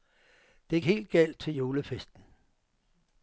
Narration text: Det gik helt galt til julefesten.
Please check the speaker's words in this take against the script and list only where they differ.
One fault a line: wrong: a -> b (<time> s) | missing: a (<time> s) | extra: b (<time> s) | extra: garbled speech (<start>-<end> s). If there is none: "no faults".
missing: gik (0.8 s)